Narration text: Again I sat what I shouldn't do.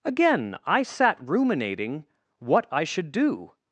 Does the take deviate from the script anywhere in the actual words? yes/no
yes